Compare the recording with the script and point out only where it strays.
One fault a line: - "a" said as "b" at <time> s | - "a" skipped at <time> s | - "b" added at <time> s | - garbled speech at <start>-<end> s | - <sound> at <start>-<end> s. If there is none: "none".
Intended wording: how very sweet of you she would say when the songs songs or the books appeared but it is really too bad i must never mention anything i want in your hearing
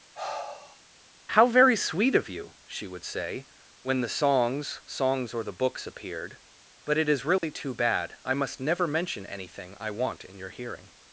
- sigh at 0.1-0.8 s
- dropout at 7.4-7.4 s